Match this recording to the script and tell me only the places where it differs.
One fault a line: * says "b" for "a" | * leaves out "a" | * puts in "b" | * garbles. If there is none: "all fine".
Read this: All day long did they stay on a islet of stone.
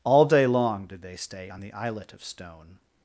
* says "the" for "a"